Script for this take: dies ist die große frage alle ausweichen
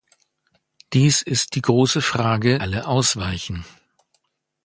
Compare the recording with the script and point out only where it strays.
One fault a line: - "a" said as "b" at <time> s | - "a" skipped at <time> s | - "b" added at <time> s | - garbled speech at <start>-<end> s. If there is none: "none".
none